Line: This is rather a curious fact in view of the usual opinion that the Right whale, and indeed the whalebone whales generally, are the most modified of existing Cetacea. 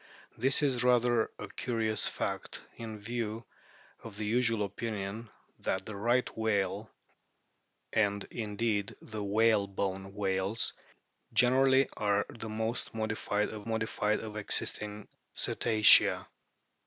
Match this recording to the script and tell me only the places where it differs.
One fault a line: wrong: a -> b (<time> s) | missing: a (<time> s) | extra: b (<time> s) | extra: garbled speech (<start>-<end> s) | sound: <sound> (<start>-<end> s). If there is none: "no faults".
extra: modified of (13.6 s)